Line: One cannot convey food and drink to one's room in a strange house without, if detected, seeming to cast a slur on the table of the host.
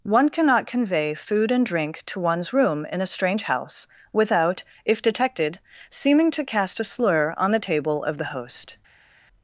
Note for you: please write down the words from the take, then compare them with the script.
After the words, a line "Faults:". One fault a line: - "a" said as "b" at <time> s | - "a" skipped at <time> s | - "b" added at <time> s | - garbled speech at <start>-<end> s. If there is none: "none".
One cannot convey food and drink to one's room in a strange house without, if detected, seeming to cast a slur on the table of the host.
Faults:
none